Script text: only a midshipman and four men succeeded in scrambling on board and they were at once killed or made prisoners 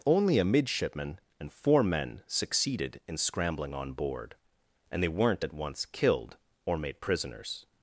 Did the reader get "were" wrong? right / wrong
wrong